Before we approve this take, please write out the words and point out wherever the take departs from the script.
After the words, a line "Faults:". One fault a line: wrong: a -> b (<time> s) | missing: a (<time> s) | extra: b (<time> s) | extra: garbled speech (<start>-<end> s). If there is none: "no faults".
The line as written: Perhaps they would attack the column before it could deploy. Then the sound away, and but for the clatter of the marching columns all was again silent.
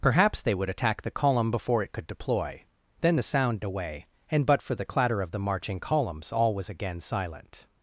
Perhaps they would attack the column before it could deploy. Then the sound away, and but for the clatter of the marching columns all was again silent.
Faults:
no faults